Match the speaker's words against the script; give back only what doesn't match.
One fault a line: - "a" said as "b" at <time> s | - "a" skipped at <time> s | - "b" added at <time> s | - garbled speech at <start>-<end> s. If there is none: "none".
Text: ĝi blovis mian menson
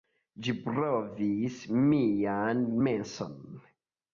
none